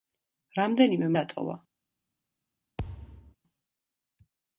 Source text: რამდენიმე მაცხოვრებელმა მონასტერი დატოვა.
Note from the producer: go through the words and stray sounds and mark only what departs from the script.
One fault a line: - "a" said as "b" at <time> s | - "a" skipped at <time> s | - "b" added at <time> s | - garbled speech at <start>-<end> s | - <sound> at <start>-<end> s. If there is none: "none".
- "მაცხოვრებელმა მონასტერი" skipped at 1.1 s
- thud at 2.8-3.4 s